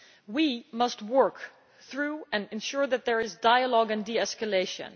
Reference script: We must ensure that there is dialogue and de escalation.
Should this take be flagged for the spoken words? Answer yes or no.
yes